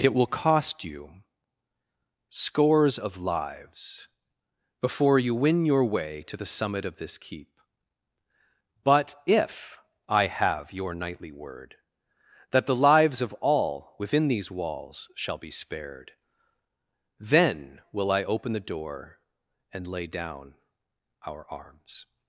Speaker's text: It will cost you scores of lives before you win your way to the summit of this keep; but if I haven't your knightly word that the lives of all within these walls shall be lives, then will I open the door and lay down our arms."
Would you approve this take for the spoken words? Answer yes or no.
no